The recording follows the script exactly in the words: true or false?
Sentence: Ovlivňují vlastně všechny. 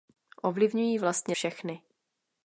true